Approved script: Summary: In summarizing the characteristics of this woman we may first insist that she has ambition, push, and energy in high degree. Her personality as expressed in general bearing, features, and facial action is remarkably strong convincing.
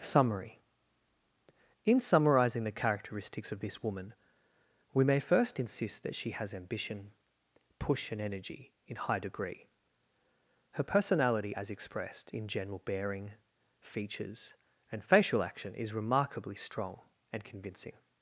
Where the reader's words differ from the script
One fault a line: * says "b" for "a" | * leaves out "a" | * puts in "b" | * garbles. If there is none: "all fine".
* puts in "and"